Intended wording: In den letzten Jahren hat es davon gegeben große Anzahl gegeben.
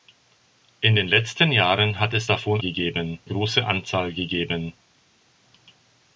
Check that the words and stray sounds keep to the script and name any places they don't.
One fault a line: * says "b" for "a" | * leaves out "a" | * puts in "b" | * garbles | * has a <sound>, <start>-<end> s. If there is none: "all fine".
all fine